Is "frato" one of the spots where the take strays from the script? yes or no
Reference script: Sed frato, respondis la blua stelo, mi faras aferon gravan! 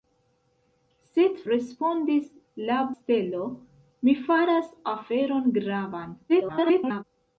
yes